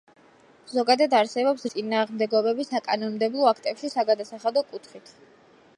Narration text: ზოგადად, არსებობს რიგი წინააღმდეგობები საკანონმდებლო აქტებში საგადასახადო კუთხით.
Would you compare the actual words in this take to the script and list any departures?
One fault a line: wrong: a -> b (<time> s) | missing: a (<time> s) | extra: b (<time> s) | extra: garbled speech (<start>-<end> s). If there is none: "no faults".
missing: რიგი (1.6 s)